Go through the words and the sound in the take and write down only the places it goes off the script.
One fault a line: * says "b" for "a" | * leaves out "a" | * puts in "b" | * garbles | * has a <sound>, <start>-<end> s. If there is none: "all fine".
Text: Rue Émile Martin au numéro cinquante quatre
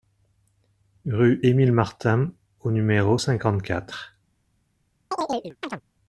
* has a chirp, 5.1-5.8 s